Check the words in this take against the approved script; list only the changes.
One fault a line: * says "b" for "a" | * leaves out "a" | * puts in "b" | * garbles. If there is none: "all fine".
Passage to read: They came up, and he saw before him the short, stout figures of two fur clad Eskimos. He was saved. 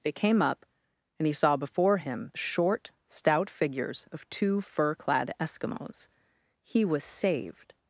all fine